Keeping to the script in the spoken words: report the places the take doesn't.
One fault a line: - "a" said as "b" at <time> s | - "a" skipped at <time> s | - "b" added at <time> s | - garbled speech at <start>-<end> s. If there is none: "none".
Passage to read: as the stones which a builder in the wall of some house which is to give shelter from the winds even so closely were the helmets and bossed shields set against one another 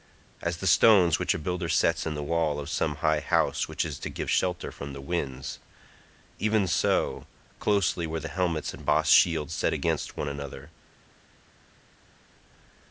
- "sets" added at 1.7 s
- "high" added at 3.0 s